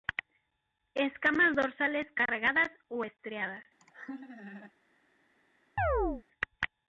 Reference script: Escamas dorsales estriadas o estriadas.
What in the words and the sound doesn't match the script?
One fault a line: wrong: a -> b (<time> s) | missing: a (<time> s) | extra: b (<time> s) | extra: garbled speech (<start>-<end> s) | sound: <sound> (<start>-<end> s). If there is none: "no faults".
wrong: estriadas -> cargadas (2.1 s)
sound: laugh (3.8-4.7 s)
sound: chirp (5.8-6.2 s)